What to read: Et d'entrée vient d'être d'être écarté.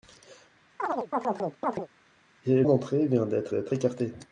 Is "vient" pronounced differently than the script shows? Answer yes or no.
no